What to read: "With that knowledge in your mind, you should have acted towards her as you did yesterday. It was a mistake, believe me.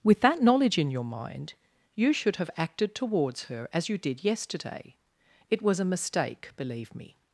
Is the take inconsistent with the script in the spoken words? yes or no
no